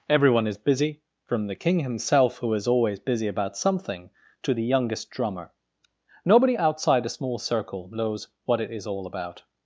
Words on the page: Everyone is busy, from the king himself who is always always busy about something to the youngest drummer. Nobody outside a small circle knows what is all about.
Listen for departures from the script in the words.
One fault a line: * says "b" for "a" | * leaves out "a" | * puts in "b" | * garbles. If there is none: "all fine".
* leaves out "always"
* puts in "it"